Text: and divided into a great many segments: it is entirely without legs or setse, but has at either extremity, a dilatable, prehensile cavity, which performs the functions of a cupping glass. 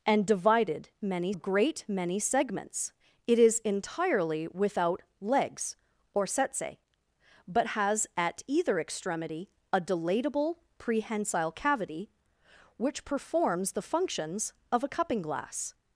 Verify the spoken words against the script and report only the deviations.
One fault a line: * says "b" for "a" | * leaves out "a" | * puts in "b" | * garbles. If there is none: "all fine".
* says "many" for "into"